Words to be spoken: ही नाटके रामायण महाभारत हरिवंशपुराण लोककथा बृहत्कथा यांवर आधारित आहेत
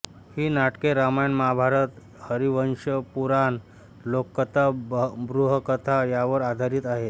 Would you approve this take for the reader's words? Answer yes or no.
yes